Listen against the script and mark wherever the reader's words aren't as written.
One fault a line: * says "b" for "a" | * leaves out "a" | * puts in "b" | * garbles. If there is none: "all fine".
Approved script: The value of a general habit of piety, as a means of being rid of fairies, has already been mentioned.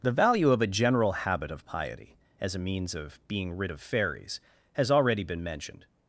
all fine